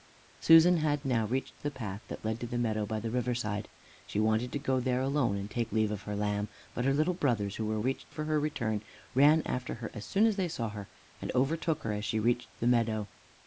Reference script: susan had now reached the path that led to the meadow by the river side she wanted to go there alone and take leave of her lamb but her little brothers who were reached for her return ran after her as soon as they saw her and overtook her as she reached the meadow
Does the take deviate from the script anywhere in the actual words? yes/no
no